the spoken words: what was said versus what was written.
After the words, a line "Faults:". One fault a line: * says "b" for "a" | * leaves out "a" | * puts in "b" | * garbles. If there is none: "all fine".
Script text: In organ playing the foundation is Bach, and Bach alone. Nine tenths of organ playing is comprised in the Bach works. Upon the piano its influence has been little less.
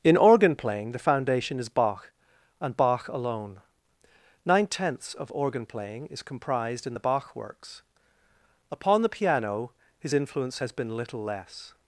In organ playing the foundation is Bach, and Bach alone. Nine tenths of organ playing is comprised in the Bach works. Upon the piano his influence has been little less.
Faults:
* says "his" for "its"